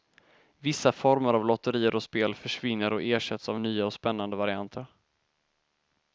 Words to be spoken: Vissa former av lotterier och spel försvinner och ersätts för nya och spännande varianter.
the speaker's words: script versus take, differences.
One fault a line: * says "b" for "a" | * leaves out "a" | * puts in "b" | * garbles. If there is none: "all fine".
* says "av" for "för"